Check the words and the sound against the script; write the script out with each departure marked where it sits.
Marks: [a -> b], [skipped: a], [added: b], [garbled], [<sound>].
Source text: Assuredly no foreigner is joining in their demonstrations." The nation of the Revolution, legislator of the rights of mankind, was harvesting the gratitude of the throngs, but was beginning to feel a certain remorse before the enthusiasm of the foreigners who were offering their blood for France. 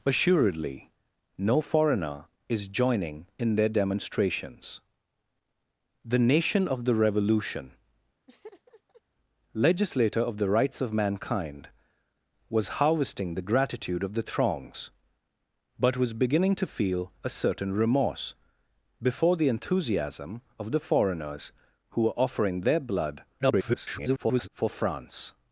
Assuredly no foreigner is joining in their demonstrations." The nation of the Revolution, [laugh] legislator of the rights of mankind, was harvesting the gratitude of the throngs, but was beginning to feel a certain remorse before the enthusiasm of the foreigners who were offering their blood [garbled] for France.